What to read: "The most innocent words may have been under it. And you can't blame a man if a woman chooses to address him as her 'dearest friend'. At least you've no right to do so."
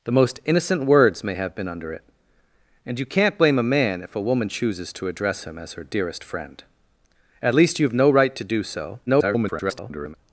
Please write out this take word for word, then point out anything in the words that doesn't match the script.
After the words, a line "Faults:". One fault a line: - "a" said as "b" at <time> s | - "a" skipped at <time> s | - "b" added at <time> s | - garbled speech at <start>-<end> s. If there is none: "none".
"The most innocent words may have been under it. And you can't blame a man if a woman chooses to address him as her 'dearest friend'. At least you've no right to do so." [garbled]
Faults:
- garbled speech at 9.1-10.2 s